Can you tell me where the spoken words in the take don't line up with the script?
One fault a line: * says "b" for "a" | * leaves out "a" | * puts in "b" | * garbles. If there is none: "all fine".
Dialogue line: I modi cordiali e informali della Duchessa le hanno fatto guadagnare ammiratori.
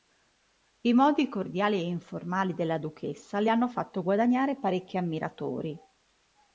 * puts in "parecchi"